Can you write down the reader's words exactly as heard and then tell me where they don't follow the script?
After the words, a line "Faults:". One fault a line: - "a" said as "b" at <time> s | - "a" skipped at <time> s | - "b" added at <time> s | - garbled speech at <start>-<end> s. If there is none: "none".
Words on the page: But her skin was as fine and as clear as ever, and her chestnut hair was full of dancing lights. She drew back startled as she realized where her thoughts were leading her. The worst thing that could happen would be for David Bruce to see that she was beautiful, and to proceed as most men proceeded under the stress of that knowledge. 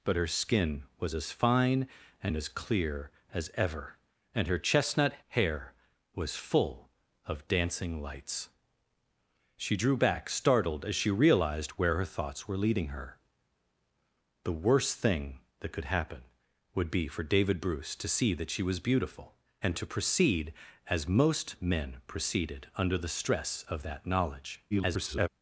But her skin was as fine and as clear as ever, and her chestnut hair was full of dancing lights. She drew back startled as she realized where her thoughts were leading her. The worst thing that could happen would be for David Bruce to see that she was beautiful, and to proceed as most men proceeded under the stress of that knowledge. [garbled]
Faults:
- garbled speech at 24.7-25.3 s